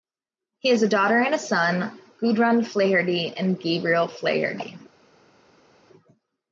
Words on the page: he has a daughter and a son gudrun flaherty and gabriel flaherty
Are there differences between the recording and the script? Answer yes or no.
no